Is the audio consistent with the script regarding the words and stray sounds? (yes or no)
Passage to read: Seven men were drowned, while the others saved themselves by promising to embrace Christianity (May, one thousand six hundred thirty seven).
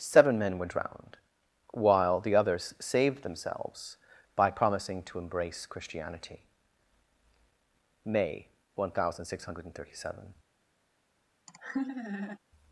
no